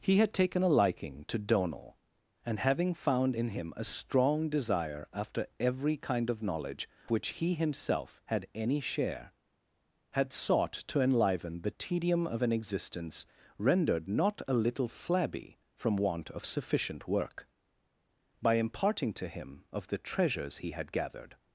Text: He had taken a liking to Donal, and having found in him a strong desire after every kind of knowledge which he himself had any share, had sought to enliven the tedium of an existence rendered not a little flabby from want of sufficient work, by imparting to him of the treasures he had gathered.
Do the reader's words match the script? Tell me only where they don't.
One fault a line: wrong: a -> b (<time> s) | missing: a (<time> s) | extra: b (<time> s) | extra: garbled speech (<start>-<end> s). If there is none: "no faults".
no faults